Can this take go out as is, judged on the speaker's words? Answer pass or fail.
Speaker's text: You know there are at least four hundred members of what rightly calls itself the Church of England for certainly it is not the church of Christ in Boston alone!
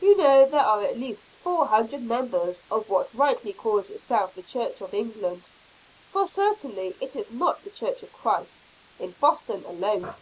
pass